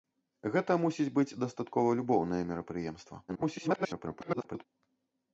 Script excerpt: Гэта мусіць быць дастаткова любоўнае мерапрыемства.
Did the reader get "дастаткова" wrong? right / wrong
right